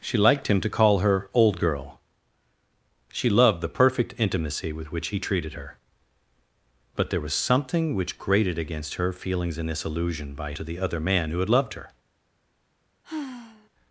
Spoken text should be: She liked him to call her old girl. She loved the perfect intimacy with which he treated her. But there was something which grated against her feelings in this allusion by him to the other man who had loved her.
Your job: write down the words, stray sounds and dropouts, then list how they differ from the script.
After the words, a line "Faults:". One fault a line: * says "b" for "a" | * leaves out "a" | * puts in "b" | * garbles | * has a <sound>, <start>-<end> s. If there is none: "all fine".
She liked him to call her old girl. She loved the perfect intimacy with which he treated her. But there was something which grated against her feelings in this allusion by to the other man who had loved her.
Faults:
* leaves out "him"
* has a sigh, 13.0-13.7 s